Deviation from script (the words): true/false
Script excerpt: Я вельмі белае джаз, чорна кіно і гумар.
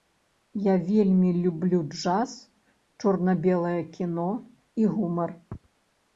true